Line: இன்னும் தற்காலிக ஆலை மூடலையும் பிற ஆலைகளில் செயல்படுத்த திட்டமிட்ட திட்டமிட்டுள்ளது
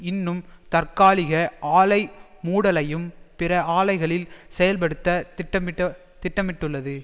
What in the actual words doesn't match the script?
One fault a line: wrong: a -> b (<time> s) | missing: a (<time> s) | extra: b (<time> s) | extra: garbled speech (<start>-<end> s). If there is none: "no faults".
no faults